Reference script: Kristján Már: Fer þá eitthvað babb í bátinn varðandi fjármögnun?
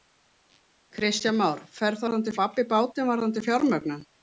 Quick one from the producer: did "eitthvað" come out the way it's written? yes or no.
no